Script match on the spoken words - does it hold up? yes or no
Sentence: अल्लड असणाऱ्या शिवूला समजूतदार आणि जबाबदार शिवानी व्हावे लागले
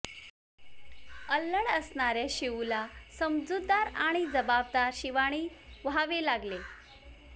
yes